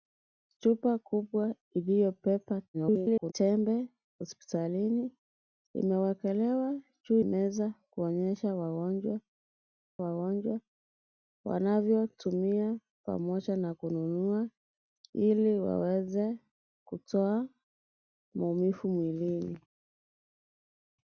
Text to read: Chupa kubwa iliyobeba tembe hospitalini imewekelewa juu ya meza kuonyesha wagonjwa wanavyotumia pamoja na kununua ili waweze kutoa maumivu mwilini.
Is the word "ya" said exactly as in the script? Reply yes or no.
no